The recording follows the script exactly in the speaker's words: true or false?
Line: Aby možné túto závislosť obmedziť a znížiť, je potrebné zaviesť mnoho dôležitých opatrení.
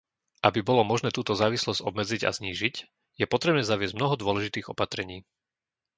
false